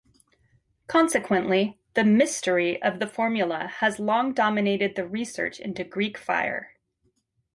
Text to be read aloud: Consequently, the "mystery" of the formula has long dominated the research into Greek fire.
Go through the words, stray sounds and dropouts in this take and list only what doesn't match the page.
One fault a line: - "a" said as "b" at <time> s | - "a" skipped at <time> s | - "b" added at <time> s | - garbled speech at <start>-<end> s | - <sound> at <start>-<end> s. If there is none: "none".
none